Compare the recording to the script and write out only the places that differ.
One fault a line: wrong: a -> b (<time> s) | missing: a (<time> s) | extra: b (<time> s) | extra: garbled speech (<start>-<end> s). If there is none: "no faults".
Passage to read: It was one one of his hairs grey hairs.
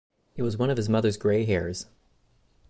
missing: one (0.7 s)
wrong: hairs -> mother's (0.9 s)